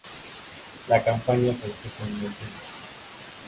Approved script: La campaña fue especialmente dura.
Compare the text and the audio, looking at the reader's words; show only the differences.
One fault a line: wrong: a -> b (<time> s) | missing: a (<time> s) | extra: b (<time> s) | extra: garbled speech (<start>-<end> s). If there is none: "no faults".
no faults